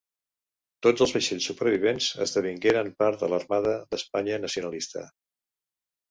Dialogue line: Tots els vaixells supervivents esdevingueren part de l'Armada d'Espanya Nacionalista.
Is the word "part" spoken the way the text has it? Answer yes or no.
yes